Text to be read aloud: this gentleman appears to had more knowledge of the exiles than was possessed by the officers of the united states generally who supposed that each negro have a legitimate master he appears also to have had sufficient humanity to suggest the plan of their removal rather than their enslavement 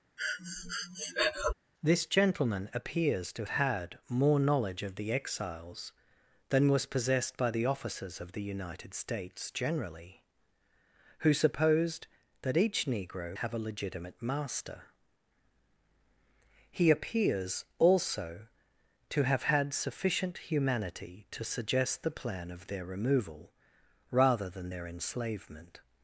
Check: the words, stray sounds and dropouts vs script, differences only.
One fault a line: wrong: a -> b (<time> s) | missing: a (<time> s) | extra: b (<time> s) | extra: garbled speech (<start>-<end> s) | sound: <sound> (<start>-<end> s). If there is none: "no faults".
sound: breath (0.2-1.5 s)